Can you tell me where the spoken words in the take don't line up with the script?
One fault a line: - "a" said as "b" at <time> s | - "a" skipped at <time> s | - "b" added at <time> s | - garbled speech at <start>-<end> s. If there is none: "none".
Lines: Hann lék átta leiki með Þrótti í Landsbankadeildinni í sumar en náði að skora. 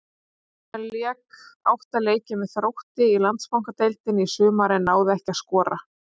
- "ekki" added at 5.2 s